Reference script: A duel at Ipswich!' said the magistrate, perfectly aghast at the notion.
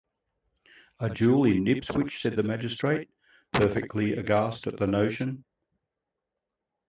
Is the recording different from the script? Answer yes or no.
yes